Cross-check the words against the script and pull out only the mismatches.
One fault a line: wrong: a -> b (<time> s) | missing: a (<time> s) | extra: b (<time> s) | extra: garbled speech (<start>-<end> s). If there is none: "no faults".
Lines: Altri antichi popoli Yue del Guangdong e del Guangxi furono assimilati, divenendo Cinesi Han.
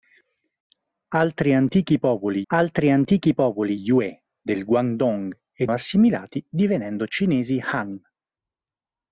extra: altri antichi popoli (2.5 s)
missing: del Guangxi furono (5.7 s)